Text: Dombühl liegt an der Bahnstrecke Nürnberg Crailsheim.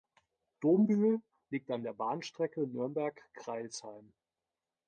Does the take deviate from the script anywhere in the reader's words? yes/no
no